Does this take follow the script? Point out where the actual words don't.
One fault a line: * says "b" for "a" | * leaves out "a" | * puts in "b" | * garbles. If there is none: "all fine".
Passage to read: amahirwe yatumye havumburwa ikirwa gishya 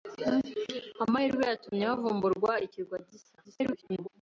* garbles